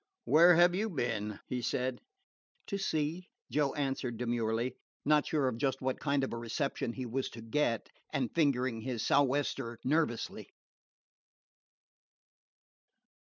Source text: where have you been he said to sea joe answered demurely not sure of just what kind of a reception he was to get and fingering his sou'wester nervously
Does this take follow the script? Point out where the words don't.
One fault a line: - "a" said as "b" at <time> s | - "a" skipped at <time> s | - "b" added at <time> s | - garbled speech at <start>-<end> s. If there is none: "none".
none